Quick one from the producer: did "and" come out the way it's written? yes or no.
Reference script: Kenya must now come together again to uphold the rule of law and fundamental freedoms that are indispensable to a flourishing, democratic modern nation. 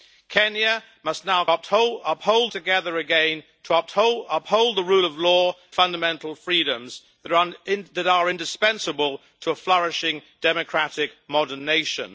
no